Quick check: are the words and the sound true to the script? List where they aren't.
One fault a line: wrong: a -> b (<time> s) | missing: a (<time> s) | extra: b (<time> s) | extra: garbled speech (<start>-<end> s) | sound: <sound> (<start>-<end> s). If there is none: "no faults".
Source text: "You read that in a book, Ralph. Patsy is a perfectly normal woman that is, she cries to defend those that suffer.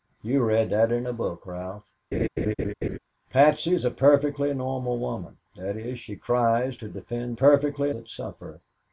sound: laugh (2.1-3.0 s)
wrong: those -> perfectly (7.3 s)